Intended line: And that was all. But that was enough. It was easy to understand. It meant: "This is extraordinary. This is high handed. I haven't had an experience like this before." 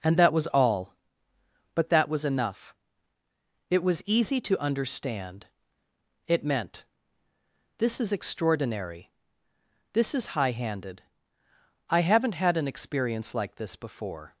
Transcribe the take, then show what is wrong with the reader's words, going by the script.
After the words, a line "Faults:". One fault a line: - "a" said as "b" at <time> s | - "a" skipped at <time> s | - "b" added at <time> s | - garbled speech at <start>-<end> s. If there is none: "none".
And that was all. But that was enough. It was easy to understand. It meant: "This is extraordinary. This is high handed. I haven't had an experience like this before."
Faults:
none